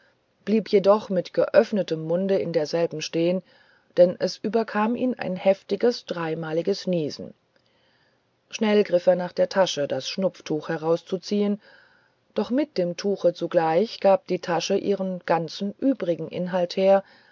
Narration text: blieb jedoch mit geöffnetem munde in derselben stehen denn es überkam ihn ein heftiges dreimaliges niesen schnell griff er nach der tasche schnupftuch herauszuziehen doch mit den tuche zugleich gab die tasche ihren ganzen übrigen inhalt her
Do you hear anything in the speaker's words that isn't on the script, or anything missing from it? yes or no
yes